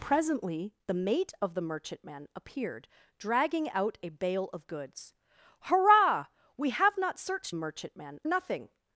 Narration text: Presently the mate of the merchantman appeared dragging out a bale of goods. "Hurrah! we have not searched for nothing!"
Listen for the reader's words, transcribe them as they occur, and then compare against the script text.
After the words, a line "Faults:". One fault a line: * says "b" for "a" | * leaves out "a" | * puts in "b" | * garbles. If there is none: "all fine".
Presently the mate of the merchantman appeared dragging out a bale of goods. "Hurrah! we have not searched merchantman nothing!"
Faults:
* says "merchantman" for "for"